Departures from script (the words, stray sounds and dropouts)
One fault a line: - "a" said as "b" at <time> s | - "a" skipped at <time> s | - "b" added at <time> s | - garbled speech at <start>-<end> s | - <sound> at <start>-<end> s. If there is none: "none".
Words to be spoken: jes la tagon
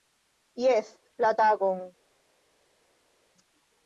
none